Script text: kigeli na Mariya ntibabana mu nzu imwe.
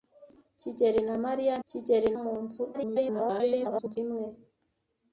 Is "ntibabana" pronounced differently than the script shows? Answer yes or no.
yes